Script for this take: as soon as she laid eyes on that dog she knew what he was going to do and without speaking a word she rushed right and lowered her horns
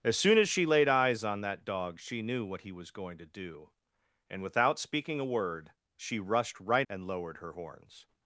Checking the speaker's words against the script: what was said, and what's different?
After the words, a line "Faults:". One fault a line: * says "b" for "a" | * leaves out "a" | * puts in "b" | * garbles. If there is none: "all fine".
as soon as she laid eyes on that dog she knew what he was going to do and without speaking a word she rushed right and lowered her horns
Faults:
all fine